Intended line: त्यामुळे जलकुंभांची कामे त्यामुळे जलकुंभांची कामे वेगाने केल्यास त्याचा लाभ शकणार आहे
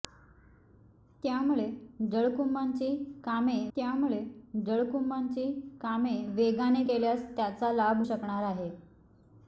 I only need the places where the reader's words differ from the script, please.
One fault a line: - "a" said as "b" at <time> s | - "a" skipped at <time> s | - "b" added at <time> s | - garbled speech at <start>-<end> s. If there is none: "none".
none